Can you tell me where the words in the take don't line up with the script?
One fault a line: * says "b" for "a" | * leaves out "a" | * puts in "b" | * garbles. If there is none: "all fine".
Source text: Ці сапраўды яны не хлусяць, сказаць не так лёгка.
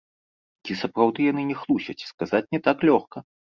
all fine